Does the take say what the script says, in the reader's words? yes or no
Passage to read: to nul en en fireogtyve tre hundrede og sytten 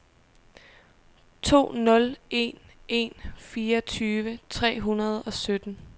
yes